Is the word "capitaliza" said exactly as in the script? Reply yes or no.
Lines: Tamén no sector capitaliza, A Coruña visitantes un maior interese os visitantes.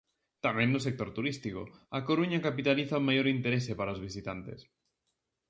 no